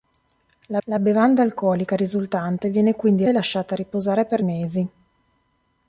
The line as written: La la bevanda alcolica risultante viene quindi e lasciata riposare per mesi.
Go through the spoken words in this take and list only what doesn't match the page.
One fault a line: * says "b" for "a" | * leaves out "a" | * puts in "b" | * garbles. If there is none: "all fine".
all fine